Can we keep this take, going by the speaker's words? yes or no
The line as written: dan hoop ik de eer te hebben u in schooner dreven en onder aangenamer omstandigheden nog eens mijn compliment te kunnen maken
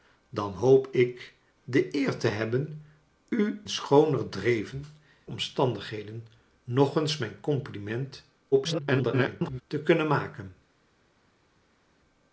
no